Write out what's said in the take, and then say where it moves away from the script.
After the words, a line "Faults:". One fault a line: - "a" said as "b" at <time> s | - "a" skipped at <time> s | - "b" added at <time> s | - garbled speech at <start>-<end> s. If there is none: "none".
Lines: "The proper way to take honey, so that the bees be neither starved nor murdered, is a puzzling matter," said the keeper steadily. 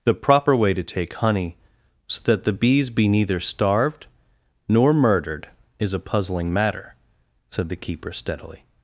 "The proper way to take honey, so that the bees be neither starved nor murdered, is a puzzling matter," said the keeper steadily.
Faults:
none